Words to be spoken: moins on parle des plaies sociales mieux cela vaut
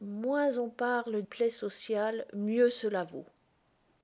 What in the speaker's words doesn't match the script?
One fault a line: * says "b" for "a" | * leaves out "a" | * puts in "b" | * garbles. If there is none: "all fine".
* leaves out "des"